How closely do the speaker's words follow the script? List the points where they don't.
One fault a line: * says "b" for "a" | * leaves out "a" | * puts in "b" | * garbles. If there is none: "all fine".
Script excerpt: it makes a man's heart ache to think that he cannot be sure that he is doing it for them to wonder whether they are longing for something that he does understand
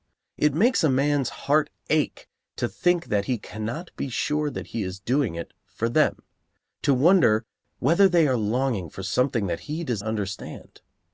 all fine